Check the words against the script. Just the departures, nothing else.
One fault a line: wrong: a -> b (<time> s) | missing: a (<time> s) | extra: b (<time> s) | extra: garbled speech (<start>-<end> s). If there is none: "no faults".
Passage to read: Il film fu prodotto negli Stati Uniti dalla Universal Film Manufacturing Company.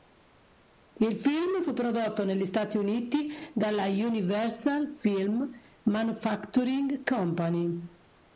no faults